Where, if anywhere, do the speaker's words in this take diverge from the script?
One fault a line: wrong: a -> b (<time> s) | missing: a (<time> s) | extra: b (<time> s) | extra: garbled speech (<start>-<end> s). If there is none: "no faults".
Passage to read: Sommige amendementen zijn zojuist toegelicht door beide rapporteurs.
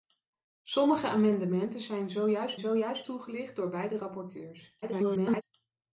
extra: zojuist (2.6 s)
extra: garbled speech (4.8-5.4 s)